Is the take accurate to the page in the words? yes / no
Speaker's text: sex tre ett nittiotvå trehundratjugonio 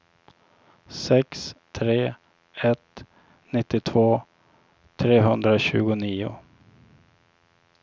yes